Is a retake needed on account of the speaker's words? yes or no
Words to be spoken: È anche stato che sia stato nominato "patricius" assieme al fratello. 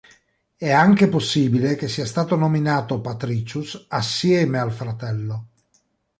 yes